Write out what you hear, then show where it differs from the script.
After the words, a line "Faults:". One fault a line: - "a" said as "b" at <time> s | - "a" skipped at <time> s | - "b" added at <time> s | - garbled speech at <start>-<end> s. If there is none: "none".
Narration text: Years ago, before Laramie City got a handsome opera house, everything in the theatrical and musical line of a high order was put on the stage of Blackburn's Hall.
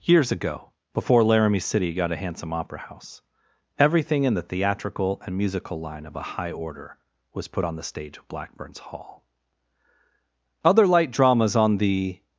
Years ago, before Laramie City got a handsome opera house, everything in the theatrical and musical line of a high order was put on the stage of Blackburn's Hall. Other light dramas on the
Faults:
- "Other light dramas on the" added at 10.6 s